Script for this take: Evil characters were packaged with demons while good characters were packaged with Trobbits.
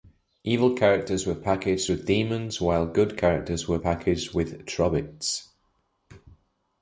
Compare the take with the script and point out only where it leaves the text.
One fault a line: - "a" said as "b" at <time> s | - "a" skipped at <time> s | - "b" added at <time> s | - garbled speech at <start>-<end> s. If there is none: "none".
none